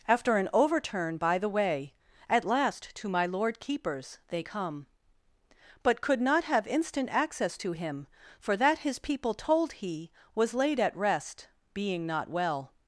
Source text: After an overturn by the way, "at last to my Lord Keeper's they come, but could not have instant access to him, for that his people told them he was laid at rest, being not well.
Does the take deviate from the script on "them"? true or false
true